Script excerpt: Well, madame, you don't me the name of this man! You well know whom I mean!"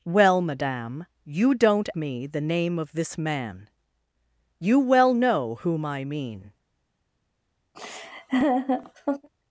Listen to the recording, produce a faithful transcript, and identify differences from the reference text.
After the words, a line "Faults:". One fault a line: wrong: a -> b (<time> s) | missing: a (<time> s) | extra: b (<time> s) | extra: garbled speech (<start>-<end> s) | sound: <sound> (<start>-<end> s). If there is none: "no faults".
Well, madame, you don't me the name of this man! You well know whom I mean!"
Faults:
sound: laugh (7.7-9.3 s)